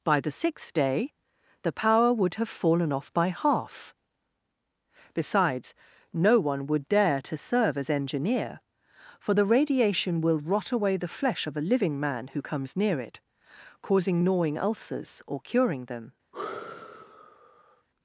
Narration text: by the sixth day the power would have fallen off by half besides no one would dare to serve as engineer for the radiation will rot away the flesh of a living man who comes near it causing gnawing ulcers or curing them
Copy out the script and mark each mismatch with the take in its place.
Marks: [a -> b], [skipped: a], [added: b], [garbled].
by the sixth day the power would have fallen off by half besides no one would dare to serve as engineer for the radiation will rot away the flesh of a living man who comes near it causing gnawing ulcers or curing them